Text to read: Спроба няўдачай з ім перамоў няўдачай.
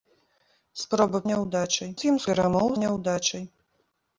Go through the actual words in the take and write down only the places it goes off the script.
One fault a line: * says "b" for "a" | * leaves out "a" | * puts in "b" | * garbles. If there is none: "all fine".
all fine